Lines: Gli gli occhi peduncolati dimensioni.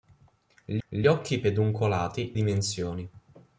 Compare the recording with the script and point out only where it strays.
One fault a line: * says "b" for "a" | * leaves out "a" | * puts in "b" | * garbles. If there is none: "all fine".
all fine